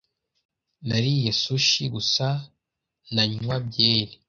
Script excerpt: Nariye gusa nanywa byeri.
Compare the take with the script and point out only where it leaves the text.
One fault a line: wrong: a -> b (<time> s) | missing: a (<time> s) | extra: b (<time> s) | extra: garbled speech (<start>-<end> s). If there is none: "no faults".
extra: sushi (1.4 s)